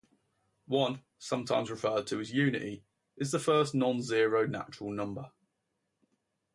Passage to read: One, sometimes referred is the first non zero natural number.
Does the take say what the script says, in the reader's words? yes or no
no